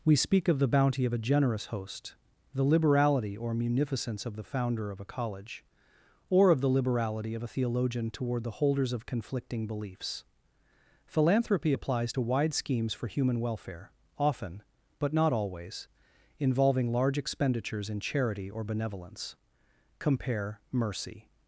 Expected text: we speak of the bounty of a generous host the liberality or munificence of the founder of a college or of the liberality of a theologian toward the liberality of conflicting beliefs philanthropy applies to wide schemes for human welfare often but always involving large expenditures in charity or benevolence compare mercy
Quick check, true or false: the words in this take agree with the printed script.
false